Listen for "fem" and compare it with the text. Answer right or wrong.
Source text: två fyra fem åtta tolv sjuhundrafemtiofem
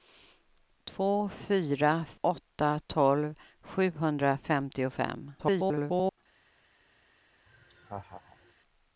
wrong